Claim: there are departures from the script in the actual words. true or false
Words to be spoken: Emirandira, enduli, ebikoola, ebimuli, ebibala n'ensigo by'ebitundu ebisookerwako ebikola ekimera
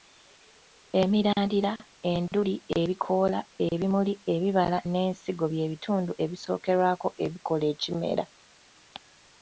false